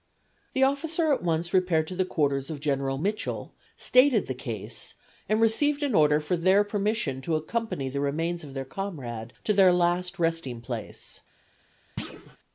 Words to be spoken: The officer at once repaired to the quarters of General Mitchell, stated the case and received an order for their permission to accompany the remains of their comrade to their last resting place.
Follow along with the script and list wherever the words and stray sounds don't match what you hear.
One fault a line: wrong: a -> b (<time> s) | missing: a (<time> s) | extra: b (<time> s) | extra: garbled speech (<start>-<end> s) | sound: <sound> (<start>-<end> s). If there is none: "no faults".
sound: thud (12.0-12.4 s)